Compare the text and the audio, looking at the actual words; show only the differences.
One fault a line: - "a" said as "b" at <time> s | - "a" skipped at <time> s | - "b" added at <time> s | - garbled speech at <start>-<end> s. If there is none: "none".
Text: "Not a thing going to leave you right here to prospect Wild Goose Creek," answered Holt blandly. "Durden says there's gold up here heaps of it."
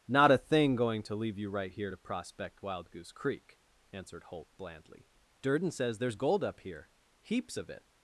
none